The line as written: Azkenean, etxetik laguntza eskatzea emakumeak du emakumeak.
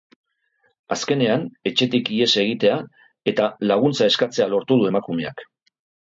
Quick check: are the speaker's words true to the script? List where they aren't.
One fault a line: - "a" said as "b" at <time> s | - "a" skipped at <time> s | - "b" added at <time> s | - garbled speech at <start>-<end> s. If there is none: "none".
- "ihes egitea eta" added at 2.1 s
- "emakumeak" said as "lortu" at 4.5 s